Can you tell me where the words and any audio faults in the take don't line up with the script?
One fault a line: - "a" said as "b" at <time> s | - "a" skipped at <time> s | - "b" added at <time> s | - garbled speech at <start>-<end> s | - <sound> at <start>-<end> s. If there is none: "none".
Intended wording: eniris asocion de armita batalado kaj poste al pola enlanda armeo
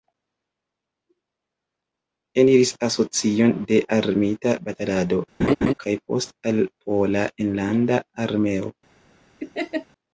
- laugh at 5.4-5.7 s
- laugh at 9.4-9.9 s